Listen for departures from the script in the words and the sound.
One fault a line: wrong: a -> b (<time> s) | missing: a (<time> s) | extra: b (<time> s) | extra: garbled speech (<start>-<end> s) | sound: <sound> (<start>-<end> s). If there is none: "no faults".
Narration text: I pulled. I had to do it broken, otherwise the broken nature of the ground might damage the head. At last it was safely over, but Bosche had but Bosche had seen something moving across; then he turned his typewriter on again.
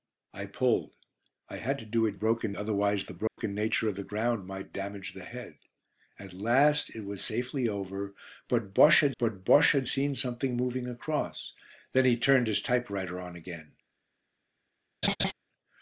sound: dropout (3.3-3.4 s)
sound: laugh (15.0-15.3 s)